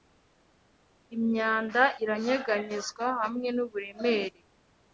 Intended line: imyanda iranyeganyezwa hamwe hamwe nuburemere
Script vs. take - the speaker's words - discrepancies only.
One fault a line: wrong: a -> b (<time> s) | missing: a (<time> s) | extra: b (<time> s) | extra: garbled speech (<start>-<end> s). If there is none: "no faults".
missing: hamwe (3.5 s)